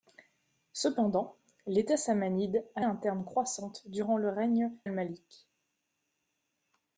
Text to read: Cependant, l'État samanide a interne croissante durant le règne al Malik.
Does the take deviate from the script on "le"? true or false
false